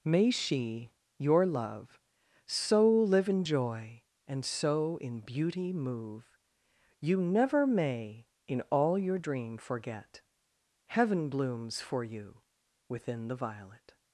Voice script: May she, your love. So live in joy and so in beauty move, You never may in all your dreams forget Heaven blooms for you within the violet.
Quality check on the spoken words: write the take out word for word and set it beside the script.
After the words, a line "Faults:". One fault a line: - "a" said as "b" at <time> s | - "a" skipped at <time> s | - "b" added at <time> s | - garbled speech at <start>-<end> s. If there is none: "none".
May she, your love. So live in joy and so in beauty move, You never may in all your dream forget Heaven blooms for you within the violet.
Faults:
- "dreams" said as "dream" at 9.1 s